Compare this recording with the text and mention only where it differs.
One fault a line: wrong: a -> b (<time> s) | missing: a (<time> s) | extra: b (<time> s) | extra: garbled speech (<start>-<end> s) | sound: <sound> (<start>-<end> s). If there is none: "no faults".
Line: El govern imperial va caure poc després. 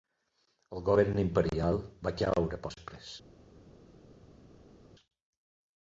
missing: poc (2.6 s)